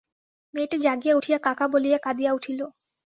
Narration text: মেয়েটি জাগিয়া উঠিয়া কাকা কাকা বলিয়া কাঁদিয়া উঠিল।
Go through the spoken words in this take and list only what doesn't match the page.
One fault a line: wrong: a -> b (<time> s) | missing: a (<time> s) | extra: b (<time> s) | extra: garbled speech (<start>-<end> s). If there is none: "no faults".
missing: কাকা (1.7 s)